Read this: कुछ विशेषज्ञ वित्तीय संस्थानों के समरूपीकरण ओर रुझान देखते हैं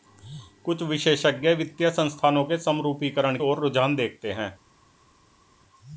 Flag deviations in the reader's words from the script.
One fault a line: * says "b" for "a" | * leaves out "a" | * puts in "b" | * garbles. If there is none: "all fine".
all fine